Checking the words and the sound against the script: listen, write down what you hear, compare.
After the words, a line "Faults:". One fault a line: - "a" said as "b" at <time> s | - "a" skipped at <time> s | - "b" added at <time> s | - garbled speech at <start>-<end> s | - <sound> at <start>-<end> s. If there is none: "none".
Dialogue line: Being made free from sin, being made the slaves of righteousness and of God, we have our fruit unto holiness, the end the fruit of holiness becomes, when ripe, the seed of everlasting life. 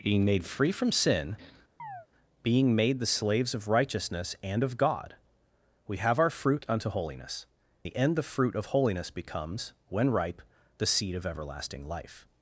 Being made free from sin, being made the slaves of righteousness and of God, we have our fruit unto holiness, the end the fruit of holiness becomes, when ripe, the seed of everlasting life.
Faults:
- chirp at 1.8-2.1 s